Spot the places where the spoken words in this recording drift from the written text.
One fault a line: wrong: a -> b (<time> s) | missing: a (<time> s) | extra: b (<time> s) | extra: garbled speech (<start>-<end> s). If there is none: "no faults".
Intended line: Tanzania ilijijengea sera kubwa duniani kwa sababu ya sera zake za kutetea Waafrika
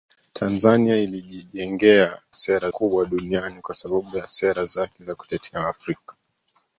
no faults